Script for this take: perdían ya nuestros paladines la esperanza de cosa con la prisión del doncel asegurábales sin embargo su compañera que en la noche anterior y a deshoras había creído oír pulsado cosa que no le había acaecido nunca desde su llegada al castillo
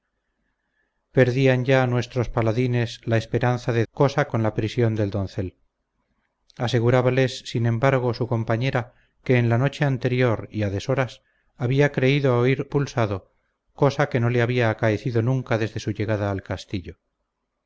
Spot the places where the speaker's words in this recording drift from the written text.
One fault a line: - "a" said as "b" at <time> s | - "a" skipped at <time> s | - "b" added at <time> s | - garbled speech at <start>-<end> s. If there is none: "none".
none